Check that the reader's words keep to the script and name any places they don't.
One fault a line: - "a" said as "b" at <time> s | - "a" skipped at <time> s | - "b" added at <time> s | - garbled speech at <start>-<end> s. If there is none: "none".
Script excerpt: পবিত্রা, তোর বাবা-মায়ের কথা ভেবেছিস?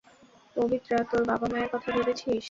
none